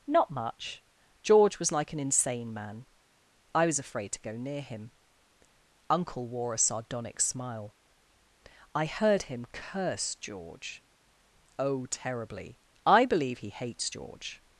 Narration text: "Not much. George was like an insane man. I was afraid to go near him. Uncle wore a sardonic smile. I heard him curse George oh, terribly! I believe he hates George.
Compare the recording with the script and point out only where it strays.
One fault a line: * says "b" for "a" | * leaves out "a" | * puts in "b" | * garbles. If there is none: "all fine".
all fine